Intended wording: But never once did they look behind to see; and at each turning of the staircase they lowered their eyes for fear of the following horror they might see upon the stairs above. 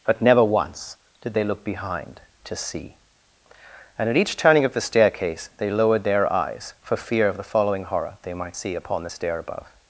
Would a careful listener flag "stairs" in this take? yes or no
yes